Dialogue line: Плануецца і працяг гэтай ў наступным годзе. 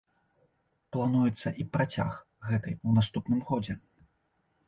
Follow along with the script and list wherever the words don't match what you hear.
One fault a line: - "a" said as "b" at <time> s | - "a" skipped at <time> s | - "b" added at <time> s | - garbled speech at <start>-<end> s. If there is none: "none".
none